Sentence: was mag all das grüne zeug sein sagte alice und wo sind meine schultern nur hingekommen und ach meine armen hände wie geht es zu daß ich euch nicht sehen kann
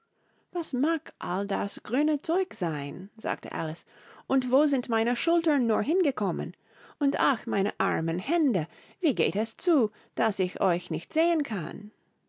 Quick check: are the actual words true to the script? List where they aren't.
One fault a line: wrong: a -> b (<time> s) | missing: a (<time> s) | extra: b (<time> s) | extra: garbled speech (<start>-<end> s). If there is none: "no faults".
no faults